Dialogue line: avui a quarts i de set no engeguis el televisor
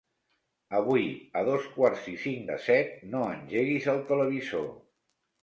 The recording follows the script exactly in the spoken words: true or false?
false